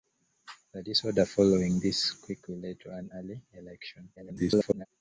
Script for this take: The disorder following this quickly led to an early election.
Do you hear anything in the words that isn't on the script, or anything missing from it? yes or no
yes